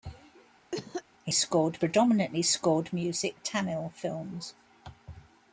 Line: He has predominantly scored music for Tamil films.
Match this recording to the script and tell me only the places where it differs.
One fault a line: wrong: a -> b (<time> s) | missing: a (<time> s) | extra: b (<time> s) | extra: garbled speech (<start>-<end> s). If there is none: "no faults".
wrong: has -> scored (1.3 s)
missing: for (3.4 s)